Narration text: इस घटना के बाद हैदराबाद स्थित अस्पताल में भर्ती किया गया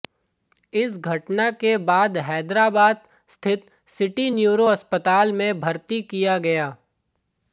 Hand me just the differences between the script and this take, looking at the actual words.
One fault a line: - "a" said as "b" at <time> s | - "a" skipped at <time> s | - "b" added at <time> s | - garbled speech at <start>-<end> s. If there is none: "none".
- "सिटी न्यूरो" added at 3.9 s